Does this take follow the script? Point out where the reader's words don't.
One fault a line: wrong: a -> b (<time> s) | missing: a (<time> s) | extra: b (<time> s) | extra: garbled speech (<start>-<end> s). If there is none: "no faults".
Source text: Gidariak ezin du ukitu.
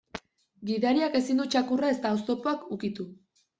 extra: txakurra ezta oztopoak (1.6 s)